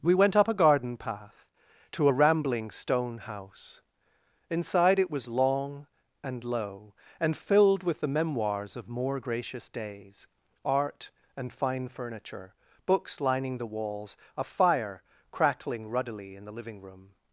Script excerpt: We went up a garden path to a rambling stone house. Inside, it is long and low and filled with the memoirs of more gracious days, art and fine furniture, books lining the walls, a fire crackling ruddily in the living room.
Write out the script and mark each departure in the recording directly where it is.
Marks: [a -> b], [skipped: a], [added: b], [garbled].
We went up a garden path to a rambling stone house. Inside, it [is -> was] long and low and filled with the memoirs of more gracious days, art and fine furniture, books lining the walls, a fire crackling ruddily in the living room.